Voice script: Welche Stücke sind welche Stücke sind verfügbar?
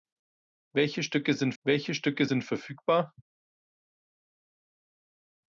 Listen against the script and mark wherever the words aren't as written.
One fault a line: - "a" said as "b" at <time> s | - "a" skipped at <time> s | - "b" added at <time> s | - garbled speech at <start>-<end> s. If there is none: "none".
none